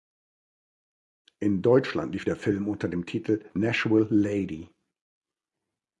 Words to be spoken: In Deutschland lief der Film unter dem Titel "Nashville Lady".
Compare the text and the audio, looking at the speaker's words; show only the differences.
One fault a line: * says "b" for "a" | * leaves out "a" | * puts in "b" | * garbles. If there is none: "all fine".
all fine